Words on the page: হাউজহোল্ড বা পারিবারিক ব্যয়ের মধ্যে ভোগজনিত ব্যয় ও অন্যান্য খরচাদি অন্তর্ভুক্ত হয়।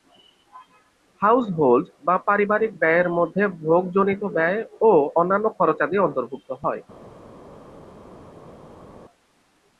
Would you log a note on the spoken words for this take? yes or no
no